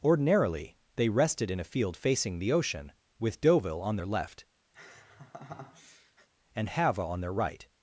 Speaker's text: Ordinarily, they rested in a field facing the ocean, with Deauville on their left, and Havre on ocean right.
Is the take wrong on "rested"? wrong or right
right